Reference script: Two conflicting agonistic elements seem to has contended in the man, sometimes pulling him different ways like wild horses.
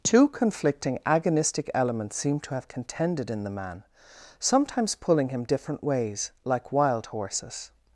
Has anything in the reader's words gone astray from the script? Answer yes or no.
yes